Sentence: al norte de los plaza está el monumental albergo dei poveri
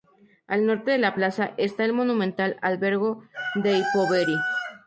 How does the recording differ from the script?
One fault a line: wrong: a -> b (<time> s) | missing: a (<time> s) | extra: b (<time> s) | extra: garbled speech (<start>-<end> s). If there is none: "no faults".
wrong: los -> la (1.0 s)